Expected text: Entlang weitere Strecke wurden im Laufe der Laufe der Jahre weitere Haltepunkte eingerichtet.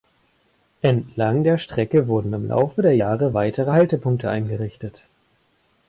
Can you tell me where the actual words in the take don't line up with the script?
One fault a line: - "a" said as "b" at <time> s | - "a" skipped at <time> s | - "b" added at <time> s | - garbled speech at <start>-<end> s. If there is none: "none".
- "weitere" said as "der" at 1.4 s
- "Laufe der" skipped at 3.0 s